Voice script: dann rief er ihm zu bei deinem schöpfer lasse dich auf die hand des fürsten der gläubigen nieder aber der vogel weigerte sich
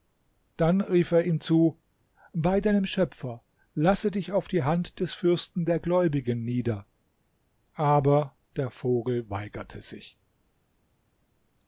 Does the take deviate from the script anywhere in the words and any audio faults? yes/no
no